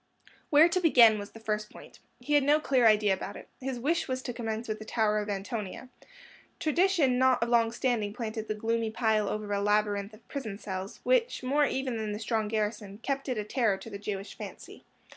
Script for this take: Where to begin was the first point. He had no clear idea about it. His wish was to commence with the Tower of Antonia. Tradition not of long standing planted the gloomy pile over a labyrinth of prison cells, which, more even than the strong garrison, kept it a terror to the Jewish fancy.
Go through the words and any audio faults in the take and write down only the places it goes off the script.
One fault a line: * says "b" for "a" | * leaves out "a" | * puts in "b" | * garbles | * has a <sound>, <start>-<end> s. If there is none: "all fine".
all fine